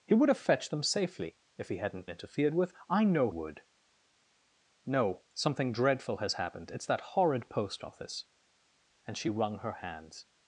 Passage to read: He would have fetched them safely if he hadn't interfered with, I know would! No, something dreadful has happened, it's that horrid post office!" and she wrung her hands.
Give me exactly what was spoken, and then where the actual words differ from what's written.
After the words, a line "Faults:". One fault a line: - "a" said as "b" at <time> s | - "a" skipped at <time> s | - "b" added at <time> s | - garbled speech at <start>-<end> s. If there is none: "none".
He would have fetched them safely if he hadn't interfered with, I know would! No, something dreadful has happened, it's that horrid post office!" and she wrung her hands.
Faults:
none